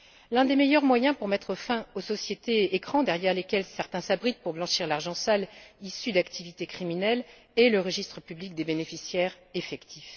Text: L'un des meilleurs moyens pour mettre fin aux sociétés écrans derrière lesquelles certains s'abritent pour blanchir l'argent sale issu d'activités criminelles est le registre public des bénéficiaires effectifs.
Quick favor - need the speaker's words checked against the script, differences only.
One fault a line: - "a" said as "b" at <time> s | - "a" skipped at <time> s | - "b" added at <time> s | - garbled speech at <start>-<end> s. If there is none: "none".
none